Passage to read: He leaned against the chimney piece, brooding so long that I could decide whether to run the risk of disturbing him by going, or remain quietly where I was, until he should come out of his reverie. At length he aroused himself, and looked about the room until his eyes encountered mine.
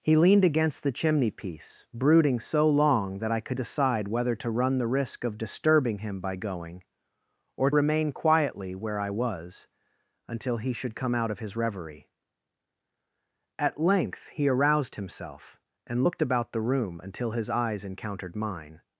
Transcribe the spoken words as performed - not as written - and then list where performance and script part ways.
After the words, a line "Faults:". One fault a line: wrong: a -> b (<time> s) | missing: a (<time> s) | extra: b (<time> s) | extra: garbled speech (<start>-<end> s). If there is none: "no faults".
He leaned against the chimney piece, brooding so long that I could decide whether to run the risk of disturbing him by going, or remain quietly where I was, until he should come out of his reverie. At length he aroused himself, and looked about the room until his eyes encountered mine.
Faults:
no faults